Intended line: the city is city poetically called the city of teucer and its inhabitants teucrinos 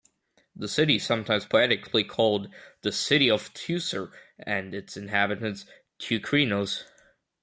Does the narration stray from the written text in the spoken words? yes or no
yes